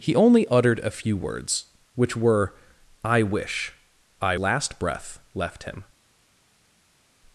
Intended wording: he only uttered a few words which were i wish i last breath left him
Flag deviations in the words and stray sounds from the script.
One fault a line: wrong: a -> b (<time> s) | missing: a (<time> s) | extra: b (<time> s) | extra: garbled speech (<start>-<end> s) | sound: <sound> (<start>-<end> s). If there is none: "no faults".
no faults